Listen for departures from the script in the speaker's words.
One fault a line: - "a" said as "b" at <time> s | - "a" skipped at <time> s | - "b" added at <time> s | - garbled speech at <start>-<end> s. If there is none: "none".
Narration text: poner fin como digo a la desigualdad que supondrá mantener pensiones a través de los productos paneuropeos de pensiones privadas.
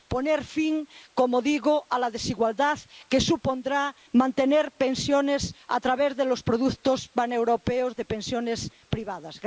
none